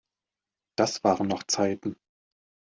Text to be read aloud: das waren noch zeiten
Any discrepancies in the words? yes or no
no